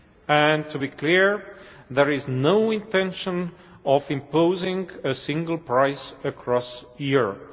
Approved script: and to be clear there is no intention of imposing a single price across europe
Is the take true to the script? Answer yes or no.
yes